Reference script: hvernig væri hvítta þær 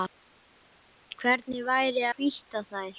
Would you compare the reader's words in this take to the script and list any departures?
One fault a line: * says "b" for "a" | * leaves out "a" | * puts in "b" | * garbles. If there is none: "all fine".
all fine